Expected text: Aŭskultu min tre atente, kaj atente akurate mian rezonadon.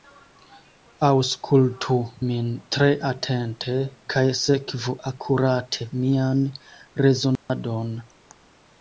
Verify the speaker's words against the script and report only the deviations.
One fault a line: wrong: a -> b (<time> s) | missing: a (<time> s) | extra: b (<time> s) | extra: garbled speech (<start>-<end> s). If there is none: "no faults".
wrong: atente -> sekvu (4.4 s)